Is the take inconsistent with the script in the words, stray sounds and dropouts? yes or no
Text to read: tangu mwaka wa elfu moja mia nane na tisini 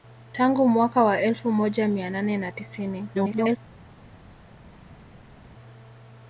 yes